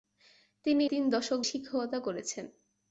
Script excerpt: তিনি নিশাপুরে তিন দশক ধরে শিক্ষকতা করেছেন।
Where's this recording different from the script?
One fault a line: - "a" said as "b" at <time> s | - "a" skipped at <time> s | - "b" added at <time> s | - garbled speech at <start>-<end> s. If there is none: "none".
- "নিশাপুরে" skipped at 0.8 s
- "ধরে" skipped at 1.4 s